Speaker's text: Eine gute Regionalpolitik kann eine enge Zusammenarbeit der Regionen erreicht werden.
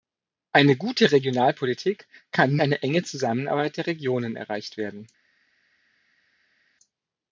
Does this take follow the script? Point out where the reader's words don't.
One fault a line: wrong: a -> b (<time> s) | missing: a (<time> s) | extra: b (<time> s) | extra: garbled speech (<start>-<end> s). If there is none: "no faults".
no faults